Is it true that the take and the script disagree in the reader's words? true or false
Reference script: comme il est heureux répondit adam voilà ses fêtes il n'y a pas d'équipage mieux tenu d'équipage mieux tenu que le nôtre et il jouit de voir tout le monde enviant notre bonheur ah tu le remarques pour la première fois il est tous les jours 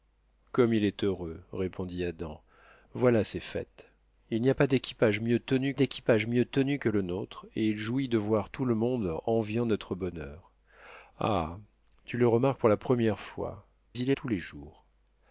false